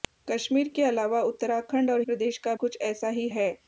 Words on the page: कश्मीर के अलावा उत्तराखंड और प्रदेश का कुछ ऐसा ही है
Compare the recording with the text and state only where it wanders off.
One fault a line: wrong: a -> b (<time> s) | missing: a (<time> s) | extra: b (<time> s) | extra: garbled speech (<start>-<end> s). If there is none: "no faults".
no faults